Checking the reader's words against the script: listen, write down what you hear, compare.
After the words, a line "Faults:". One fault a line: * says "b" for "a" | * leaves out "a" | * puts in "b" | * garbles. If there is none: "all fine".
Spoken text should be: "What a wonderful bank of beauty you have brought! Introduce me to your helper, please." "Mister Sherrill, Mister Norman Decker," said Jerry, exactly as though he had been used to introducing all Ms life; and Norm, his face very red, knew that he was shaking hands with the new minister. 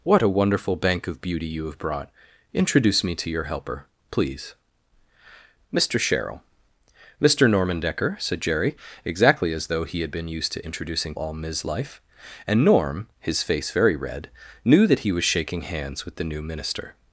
"What a wonderful bank of beauty you have brought! Introduce me to your helper, please." "Mister Sherrill, Mister Norman Decker," said Jerry, exactly as though he had been used to introducing all Ms life; and Norm, his face very red, knew that he was shaking hands with the new minister.
Faults:
all fine